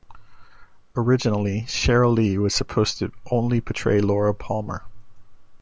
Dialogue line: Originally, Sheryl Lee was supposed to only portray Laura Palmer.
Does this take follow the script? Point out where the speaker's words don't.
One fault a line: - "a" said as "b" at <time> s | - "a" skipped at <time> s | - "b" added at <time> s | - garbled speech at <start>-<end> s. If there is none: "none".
none